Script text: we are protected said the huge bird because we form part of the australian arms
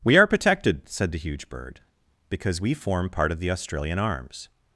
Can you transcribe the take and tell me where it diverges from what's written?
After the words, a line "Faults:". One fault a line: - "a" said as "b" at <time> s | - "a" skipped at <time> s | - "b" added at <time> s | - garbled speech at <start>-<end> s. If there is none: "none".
we are protected said the huge bird because we form part of the australian arms
Faults:
none